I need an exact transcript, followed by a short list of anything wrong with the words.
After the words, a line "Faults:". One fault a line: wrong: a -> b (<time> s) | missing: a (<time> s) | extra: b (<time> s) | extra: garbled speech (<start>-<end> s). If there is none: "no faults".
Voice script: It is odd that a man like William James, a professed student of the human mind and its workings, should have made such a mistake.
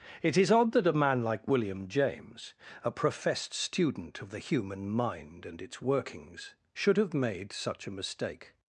It is odd that a man like William James, a professed student of the human mind and its workings, should have made such a mistake.
Faults:
no faults